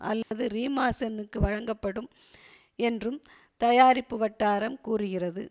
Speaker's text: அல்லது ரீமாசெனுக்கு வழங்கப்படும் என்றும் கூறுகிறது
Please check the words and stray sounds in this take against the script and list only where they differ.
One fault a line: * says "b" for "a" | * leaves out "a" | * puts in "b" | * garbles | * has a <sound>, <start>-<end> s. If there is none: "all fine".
* has a dropout, 0.2-0.3 s
* puts in "தயாரிப்பு வட்டாரம்"